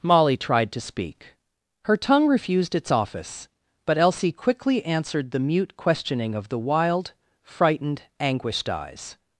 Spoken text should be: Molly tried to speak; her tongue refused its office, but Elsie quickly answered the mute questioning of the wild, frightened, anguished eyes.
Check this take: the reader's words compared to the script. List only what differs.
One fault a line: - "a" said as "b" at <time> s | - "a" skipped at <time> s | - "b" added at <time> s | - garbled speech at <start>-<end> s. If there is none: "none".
none